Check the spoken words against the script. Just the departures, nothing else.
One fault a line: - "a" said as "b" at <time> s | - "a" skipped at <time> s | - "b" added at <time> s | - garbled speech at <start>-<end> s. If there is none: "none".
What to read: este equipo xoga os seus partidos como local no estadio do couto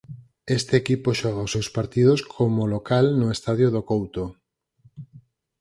none